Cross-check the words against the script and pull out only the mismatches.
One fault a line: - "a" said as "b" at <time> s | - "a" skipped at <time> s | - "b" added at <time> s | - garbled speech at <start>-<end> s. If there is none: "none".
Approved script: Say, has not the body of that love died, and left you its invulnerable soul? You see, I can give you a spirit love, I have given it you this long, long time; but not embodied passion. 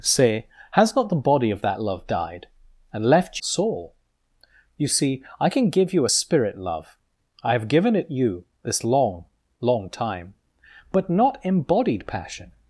- "you its invulnerable" skipped at 3.4 s